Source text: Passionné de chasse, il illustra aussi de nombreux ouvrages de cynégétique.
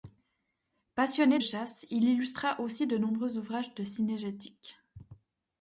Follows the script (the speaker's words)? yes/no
no